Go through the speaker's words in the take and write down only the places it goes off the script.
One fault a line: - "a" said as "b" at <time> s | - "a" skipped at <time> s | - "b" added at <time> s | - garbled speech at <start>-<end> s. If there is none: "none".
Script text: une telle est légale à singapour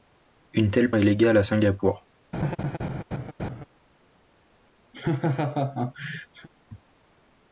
none